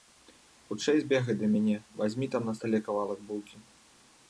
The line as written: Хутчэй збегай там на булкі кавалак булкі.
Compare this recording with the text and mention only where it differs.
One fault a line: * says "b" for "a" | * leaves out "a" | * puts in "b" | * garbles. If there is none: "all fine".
* puts in "да мяне вазьмі"
* says "стале" for "булкі"